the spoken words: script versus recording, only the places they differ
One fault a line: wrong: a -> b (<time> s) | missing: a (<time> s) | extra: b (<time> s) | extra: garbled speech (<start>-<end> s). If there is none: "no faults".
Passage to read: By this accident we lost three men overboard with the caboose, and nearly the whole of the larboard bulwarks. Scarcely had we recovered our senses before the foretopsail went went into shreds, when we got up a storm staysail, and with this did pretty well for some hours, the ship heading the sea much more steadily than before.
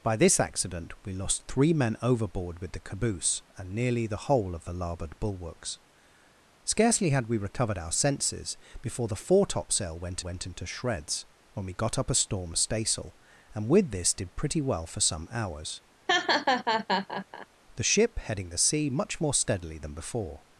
no faults